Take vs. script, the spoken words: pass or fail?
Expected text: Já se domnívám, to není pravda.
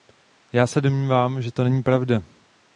fail